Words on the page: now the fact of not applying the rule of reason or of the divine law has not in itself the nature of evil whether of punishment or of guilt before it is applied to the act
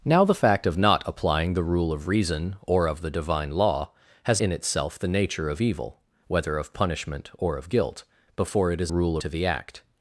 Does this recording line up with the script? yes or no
no